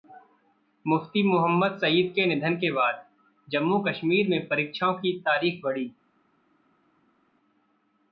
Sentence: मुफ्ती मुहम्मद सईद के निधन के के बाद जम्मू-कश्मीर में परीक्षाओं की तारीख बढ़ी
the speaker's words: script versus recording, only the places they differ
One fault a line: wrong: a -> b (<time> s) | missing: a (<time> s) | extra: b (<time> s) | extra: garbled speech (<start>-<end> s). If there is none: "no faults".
missing: के (2.7 s)